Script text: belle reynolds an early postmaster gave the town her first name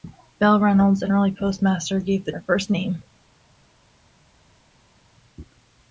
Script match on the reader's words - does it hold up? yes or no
no